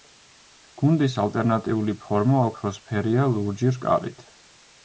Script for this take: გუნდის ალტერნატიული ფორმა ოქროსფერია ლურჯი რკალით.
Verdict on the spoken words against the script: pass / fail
pass